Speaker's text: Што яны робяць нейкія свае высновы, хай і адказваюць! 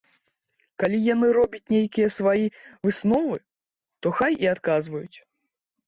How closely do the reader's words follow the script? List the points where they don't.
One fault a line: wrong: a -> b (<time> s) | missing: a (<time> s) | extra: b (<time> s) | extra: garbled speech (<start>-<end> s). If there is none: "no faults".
wrong: Што -> Калі (0.8 s)
extra: то (4.1 s)